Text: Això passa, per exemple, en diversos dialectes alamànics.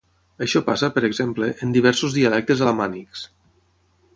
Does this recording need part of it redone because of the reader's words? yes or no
no